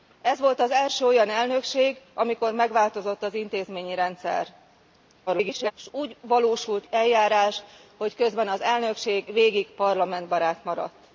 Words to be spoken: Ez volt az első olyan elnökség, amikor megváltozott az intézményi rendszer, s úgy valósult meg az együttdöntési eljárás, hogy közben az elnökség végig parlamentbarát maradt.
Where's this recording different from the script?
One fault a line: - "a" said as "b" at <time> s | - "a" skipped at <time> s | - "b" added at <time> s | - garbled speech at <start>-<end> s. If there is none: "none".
- garbled speech at 5.3-5.7 s
- "meg az együttdöntési" skipped at 6.9 s